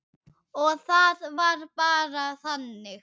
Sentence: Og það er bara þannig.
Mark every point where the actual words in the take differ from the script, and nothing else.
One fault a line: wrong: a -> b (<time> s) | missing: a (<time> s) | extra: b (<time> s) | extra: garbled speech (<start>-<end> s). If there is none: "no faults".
wrong: er -> var (1.4 s)